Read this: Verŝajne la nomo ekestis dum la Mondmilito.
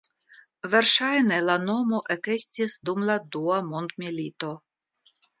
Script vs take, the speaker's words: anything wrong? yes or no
yes